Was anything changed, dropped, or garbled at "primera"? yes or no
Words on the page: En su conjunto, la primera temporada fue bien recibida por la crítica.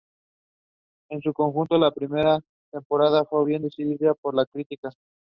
no